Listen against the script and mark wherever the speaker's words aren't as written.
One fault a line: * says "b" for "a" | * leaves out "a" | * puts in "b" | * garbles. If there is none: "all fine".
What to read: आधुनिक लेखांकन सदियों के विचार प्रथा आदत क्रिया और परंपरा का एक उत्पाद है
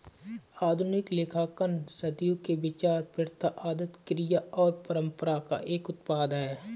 all fine